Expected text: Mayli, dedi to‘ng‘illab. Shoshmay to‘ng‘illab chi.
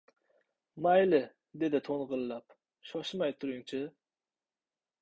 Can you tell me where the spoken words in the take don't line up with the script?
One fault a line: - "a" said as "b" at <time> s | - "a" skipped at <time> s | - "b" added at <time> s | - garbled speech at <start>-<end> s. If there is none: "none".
- "to‘ng‘illab" said as "turing" at 3.4 s